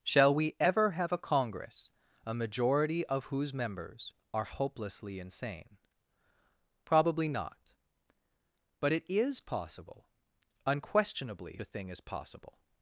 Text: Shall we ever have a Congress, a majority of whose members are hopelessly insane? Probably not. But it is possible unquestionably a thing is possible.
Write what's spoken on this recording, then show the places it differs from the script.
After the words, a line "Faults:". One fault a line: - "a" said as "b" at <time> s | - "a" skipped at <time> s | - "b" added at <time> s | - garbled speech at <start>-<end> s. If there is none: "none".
Shall we ever have a Congress, a majority of whose members are hopelessly insane? Probably not. But it is possible unquestionably a thing is possible.
Faults:
none